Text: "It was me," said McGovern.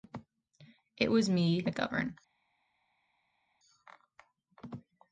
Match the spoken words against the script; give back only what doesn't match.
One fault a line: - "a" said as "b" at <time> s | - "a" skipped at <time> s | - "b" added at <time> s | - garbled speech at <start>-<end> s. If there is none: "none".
- "said" skipped at 1.7 s